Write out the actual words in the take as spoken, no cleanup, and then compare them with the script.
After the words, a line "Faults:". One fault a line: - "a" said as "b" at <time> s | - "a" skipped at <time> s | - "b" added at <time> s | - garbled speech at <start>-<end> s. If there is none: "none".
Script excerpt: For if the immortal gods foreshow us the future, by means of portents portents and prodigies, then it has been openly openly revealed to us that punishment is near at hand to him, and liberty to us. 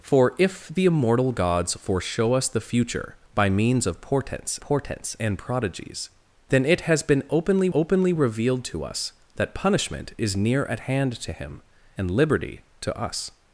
For if the immortal gods foreshow us the future, by means of portents portents and prodigies, then it has been openly openly revealed to us that punishment is near at hand to him, and liberty to us.
Faults:
none